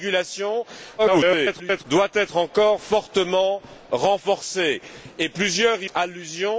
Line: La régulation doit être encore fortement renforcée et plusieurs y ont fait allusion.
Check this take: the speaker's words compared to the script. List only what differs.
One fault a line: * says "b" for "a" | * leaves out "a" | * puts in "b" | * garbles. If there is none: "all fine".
* garbles
* leaves out "ont fait"